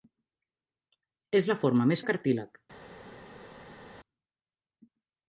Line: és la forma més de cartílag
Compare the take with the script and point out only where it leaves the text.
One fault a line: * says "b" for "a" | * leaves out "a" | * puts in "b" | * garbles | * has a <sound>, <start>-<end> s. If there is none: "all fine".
all fine